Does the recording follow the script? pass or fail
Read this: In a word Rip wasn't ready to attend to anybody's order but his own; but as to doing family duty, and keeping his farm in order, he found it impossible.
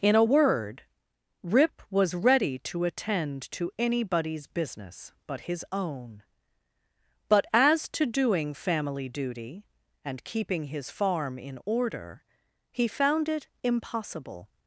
fail